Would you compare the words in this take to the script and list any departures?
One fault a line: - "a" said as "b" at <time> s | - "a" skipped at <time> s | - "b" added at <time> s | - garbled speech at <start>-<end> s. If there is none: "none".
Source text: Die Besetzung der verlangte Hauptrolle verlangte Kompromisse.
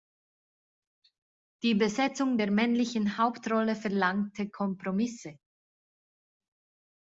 - "verlangte" said as "männlichen" at 2.5 s